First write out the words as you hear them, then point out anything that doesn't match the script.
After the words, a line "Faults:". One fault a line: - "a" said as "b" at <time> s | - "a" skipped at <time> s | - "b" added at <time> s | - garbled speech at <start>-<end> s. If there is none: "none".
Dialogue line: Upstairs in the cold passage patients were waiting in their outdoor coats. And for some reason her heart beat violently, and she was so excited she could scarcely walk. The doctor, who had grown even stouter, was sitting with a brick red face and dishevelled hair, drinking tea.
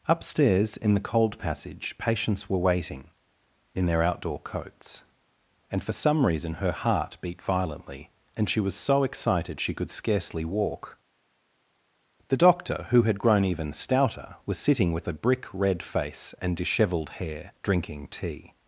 Upstairs in the cold passage patients were waiting in their outdoor coats. And for some reason her heart beat violently, and she was so excited she could scarcely walk. The doctor, who had grown even stouter, was sitting with a brick red face and dishevelled hair, drinking tea.
Faults:
none